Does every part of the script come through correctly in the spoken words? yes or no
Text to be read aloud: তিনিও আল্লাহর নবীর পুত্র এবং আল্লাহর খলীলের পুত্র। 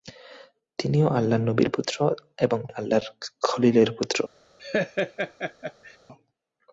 yes